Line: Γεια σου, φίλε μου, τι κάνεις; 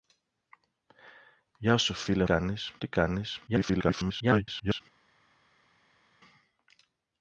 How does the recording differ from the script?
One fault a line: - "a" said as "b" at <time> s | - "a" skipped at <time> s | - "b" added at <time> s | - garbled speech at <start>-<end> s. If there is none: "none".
- "μου" said as "κάνεις" at 2.2 s
- garbled speech at 3.5-4.8 s